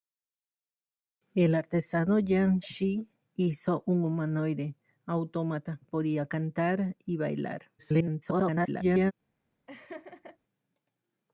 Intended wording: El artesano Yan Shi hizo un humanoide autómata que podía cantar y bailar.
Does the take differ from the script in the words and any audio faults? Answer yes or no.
yes